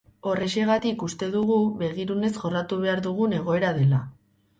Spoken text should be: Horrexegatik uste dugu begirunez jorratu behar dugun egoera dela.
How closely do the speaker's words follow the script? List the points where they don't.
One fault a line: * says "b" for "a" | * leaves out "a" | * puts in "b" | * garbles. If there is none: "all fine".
all fine